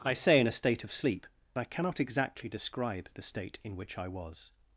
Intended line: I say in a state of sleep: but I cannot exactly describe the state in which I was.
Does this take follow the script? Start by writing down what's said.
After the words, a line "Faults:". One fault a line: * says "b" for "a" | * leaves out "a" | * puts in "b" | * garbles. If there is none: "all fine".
I say in a state of sleep: I cannot exactly describe the state in which I was.
Faults:
* leaves out "but"